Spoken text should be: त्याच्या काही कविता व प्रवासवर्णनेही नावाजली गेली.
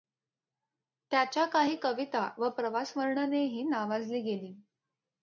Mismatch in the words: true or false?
false